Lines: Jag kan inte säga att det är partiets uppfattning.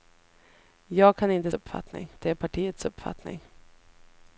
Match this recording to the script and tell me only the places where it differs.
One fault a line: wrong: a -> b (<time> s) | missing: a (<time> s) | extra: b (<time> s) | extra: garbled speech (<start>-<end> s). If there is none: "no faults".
wrong: säga -> uppfattning (1.5 s)